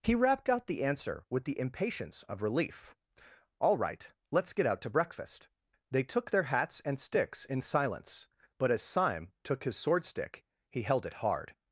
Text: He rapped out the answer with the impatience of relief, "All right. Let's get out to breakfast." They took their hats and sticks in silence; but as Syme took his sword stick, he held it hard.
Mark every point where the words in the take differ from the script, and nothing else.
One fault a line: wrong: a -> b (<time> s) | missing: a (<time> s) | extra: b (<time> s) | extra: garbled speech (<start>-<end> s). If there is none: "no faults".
no faults